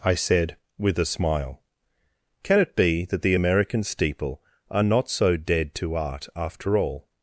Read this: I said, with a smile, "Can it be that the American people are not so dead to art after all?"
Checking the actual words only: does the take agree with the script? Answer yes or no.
no